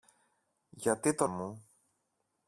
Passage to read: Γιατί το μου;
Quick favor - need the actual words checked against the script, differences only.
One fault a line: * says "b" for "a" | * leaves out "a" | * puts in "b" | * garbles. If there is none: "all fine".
all fine